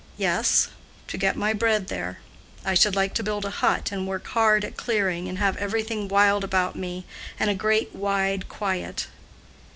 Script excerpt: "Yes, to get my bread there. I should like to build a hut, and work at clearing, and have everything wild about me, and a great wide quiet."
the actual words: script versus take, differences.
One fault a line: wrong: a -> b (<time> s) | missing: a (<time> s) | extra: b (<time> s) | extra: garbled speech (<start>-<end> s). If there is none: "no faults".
extra: hard (4.3 s)